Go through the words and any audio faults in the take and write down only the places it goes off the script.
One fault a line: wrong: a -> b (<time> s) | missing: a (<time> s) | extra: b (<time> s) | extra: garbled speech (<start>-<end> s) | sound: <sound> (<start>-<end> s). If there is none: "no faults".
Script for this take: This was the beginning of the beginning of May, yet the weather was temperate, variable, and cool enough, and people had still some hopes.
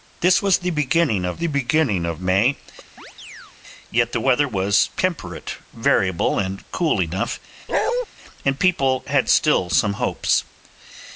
sound: chirp (3.0-3.6 s)
sound: bark (7.7-8.1 s)